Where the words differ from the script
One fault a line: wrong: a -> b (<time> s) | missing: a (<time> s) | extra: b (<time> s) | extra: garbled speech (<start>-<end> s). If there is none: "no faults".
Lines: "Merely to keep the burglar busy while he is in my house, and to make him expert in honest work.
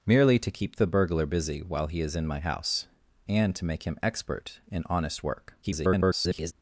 extra: garbled speech (5.6-6.5 s)